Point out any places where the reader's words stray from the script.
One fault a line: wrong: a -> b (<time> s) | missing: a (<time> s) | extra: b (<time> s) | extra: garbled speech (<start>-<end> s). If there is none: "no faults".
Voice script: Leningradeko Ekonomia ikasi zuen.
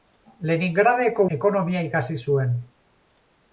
no faults